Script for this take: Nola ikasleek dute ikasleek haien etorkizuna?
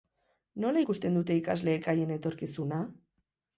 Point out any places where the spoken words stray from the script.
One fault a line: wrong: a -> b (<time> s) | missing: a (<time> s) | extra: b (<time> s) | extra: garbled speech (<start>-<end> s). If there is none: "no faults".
wrong: ikasleek -> ikusten (0.8 s)